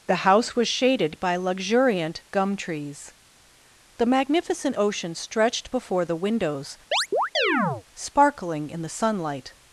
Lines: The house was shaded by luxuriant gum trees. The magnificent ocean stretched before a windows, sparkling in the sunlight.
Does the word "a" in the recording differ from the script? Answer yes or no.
yes